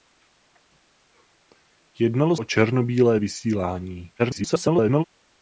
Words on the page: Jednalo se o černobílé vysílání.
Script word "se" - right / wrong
wrong